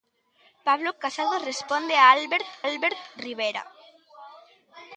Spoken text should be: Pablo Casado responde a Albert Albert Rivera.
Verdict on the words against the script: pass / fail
pass